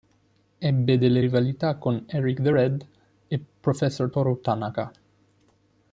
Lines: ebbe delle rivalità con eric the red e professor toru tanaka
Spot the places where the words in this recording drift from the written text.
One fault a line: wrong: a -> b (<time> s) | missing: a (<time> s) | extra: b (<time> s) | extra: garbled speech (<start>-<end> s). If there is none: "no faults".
no faults